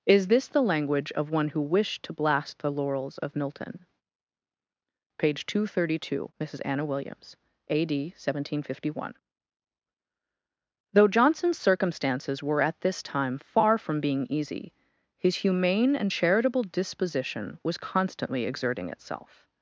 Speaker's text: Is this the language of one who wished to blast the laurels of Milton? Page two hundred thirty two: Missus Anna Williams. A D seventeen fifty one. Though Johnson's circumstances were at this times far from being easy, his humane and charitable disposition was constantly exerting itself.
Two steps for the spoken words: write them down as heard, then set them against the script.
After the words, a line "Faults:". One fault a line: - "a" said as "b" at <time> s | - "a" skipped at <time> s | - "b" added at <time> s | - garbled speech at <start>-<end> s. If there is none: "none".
Is this the language of one who wished to blast the laurels of Milton? Page two hundred thirty two: Missus Anna Williams. A D seventeen fifty one. Though Johnson's circumstances were at this time far from being easy, his humane and charitable disposition was constantly exerting itself.
Faults:
- "times" said as "time" at 13.0 s